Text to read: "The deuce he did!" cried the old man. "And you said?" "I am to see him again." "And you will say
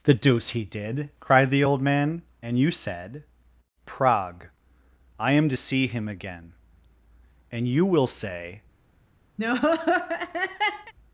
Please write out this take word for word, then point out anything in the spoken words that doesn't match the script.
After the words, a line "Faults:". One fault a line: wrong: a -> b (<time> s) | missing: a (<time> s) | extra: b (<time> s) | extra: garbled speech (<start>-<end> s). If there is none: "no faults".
"The deuce he did!" cried the old man. "And you said?" prague "I am to see him again." "And you will say
Faults:
extra: prague (3.9 s)